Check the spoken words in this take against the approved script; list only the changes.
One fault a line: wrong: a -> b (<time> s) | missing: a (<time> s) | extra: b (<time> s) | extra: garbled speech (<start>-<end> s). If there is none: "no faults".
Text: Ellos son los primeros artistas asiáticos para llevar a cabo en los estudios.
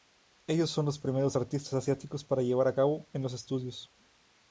no faults